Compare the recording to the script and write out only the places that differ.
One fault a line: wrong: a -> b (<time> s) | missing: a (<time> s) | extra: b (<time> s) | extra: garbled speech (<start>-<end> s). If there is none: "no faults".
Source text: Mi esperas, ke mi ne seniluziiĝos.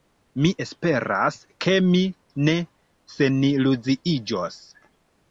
no faults